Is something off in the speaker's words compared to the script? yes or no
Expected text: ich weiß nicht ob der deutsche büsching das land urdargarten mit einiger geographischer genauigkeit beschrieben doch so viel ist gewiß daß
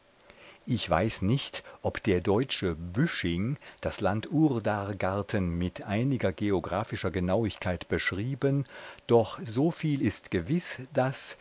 no